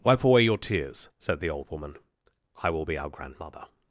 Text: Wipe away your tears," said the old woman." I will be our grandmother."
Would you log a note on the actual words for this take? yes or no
no